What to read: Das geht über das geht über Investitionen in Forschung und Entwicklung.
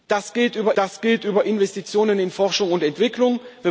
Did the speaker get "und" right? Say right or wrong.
right